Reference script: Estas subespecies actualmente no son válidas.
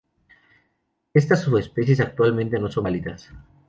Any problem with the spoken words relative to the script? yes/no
no